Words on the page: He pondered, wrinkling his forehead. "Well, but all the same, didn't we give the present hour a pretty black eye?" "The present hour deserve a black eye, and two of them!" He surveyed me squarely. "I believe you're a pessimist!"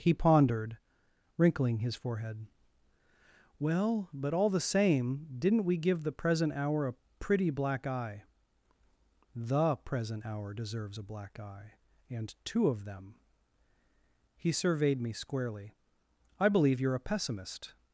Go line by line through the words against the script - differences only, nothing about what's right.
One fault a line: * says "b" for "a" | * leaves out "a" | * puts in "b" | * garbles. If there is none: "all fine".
* says "deserves" for "deserve"